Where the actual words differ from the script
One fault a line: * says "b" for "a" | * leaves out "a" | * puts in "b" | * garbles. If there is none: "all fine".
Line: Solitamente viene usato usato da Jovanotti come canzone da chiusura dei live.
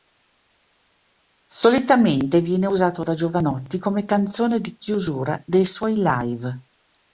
* leaves out "usato"
* says "di" for "da"
* puts in "suoi"